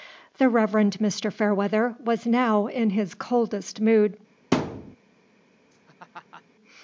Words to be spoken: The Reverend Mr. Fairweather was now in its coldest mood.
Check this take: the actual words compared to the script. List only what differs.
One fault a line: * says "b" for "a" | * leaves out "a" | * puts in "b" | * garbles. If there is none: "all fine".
* says "his" for "its"